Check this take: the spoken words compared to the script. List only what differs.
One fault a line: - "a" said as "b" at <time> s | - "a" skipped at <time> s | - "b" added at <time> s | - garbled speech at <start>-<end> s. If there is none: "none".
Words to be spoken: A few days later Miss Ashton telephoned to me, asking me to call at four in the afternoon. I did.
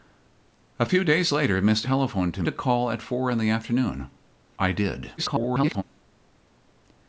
- "Ashton" skipped at 1.9 s
- "me asking me" skipped at 2.4 s
- garbled speech at 5.2-5.8 s